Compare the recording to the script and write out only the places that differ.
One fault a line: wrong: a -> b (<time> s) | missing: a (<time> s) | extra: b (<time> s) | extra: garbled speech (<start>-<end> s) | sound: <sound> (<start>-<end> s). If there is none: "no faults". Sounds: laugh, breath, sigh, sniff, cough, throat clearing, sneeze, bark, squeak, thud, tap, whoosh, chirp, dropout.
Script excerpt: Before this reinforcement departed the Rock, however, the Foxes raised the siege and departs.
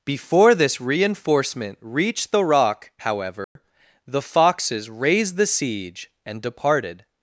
wrong: departed -> reached (1.8 s)
sound: dropout (3.4-3.6 s)
wrong: departs -> departed (6.4 s)